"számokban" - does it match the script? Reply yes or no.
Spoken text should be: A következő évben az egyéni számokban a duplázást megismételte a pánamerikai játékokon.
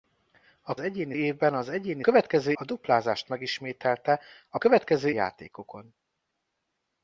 no